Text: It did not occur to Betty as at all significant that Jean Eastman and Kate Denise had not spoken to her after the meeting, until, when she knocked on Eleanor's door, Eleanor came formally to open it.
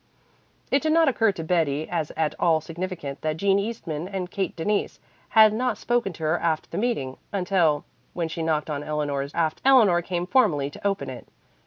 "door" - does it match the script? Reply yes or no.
no